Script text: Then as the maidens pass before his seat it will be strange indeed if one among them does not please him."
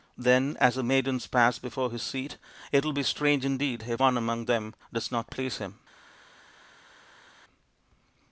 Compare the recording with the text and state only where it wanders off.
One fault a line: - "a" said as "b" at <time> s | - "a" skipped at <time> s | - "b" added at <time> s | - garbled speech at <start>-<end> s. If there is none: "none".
none